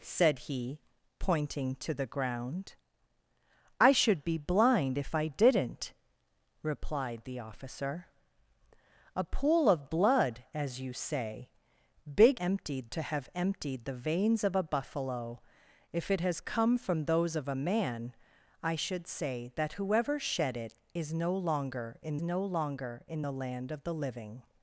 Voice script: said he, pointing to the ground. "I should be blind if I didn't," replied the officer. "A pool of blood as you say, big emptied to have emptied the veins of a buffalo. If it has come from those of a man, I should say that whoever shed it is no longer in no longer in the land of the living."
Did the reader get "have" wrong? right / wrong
right